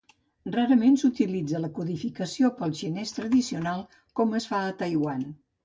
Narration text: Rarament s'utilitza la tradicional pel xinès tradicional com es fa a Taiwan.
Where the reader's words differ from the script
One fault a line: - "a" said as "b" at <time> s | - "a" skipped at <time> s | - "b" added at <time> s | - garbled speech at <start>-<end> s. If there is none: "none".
- "tradicional" said as "codificació" at 1.8 s